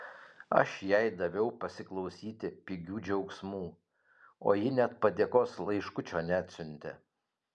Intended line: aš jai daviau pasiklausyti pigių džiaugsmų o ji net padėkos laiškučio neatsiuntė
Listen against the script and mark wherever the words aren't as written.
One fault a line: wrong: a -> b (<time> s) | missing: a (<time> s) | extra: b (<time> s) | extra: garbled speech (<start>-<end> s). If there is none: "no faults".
no faults